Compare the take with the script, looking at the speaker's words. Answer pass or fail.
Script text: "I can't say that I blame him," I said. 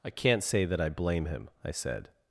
pass